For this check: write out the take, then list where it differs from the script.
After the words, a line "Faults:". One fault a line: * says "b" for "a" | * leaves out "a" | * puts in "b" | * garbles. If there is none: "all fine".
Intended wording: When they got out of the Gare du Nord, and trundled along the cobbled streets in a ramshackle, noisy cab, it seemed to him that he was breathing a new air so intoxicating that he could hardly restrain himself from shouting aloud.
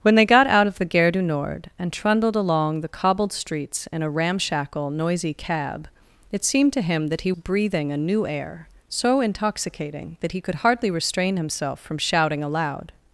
When they got out of the Gare du Nord, and trundled along the cobbled streets in a ramshackle, noisy cab, it seemed to him that he breathing a new air so intoxicating that he could hardly restrain himself from shouting aloud.
Faults:
* leaves out "was"